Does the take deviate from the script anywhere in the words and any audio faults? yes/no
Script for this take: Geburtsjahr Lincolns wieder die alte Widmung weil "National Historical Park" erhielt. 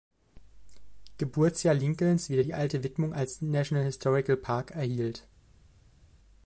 yes